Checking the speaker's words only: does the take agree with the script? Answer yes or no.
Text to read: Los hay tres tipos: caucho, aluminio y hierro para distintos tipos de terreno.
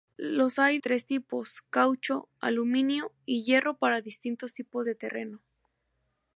yes